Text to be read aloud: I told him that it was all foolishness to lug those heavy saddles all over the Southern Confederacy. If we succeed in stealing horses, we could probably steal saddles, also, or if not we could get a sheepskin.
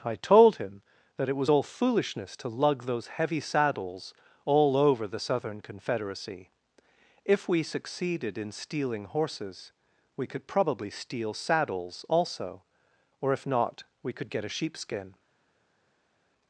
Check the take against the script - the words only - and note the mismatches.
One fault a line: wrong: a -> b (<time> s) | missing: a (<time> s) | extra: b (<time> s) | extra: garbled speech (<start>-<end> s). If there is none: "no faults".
wrong: succeed -> succeeded (7.6 s)